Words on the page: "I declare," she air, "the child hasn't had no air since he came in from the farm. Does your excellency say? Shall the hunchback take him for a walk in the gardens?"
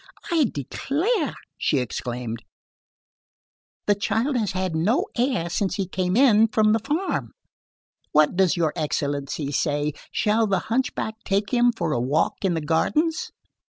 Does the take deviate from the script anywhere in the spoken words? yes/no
yes